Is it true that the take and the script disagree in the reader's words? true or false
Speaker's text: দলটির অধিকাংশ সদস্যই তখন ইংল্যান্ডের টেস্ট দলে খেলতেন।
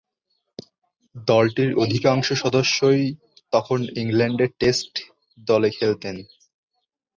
false